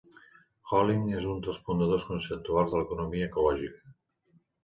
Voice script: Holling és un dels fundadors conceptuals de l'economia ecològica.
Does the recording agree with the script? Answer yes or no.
yes